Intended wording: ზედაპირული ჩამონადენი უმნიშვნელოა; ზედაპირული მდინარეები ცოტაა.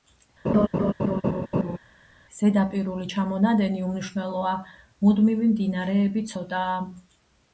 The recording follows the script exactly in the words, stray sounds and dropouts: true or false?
false